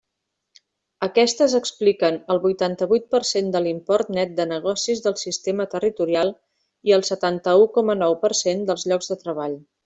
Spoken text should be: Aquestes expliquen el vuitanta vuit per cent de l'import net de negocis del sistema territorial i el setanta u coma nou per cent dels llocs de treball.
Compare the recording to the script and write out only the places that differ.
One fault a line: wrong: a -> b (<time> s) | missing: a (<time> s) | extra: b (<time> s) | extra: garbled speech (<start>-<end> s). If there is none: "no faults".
no faults